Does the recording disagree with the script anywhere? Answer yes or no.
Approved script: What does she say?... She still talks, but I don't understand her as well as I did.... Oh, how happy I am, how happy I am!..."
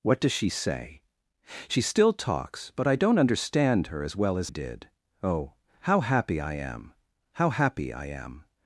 yes